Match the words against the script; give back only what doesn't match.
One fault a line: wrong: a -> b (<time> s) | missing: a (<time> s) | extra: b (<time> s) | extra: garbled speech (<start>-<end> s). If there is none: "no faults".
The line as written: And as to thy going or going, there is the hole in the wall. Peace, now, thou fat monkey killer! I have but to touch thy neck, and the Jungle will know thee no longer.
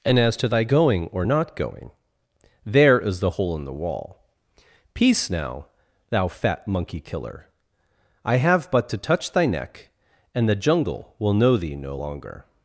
extra: not (1.2 s)